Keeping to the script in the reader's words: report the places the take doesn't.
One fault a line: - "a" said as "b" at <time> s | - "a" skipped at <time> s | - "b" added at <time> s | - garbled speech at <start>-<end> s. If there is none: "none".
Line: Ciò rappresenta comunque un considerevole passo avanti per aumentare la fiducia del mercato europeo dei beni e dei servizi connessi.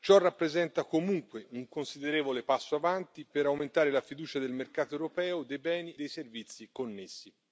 - "e" skipped at 5.9 s